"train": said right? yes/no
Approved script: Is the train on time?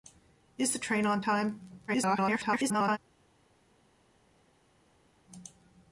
yes